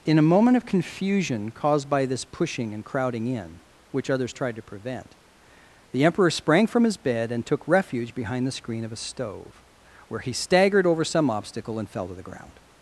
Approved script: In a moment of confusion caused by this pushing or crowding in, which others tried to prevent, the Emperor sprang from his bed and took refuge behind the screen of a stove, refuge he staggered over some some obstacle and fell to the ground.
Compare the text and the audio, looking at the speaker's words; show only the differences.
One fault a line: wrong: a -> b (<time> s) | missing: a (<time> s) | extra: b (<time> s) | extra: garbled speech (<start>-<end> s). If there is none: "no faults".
wrong: or -> and (2.7 s)
wrong: refuge -> where (10.1 s)
missing: some (11.3 s)